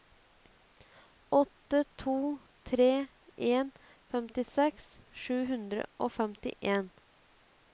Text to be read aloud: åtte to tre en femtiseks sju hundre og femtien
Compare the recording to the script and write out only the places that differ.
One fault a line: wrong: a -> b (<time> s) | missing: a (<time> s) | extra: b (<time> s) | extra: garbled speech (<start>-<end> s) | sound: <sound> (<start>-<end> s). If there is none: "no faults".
no faults